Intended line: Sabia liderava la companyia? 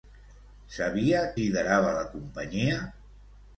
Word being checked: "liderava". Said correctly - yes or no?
yes